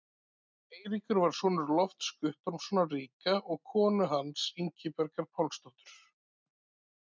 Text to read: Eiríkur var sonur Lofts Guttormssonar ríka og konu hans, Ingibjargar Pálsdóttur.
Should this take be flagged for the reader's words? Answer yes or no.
no